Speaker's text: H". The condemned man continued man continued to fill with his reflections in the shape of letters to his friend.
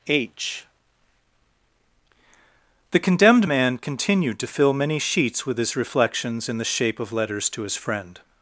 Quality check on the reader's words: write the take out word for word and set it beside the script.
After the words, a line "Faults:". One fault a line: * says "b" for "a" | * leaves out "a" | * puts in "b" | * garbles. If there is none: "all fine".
H". The condemned man continued to fill many sheets with his reflections in the shape of letters to his friend.
Faults:
* says "to fill many sheets" for "man continued to fill"